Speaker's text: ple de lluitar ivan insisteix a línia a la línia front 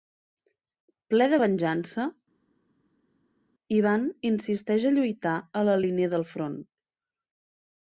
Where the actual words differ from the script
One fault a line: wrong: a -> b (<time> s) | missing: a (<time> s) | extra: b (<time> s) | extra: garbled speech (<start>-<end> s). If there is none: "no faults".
wrong: lluitar -> venjança (1.4 s)
wrong: línia -> lluitar (5.0 s)
extra: del (6.1 s)